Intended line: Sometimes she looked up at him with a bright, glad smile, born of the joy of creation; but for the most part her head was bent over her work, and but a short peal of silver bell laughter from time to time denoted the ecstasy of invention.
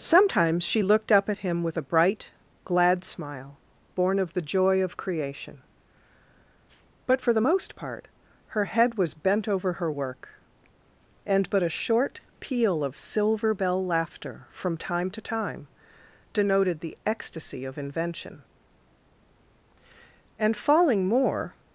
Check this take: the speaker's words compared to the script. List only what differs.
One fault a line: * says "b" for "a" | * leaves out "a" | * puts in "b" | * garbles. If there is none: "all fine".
* puts in "And falling more"